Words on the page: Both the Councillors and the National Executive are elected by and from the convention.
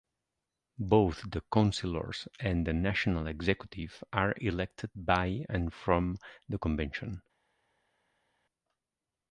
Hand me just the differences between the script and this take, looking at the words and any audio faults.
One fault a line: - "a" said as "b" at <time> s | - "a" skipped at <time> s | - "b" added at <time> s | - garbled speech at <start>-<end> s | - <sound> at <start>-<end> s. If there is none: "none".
none